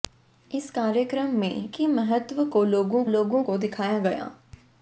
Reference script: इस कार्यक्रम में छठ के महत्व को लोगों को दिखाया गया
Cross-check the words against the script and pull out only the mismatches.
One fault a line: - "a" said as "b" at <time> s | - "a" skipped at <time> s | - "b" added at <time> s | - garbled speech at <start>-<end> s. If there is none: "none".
- "छठ" skipped at 1.7 s
- "लोगों" added at 3.0 s